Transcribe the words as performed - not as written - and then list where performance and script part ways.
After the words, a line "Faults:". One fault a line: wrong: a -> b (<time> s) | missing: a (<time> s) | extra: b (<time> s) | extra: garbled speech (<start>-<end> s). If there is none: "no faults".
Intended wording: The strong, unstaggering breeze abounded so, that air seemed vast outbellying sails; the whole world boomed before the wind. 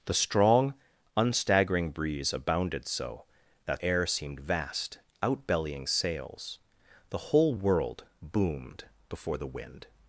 The strong, unstaggering breeze abounded so, that air seemed vast outbellying sails; the whole world boomed before the wind.
Faults:
no faults